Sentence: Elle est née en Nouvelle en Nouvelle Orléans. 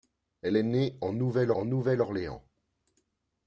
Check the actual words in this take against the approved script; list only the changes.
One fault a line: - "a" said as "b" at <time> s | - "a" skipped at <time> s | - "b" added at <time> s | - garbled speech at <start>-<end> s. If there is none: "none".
none